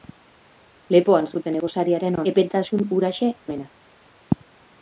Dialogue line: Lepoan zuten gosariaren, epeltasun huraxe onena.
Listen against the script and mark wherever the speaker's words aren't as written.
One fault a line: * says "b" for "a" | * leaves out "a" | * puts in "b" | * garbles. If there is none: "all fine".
all fine